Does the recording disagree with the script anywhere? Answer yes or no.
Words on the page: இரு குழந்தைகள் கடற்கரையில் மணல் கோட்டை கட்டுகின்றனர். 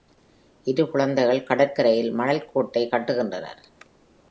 no